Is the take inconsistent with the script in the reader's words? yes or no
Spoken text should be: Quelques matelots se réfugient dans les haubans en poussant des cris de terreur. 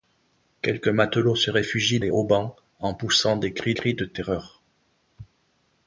yes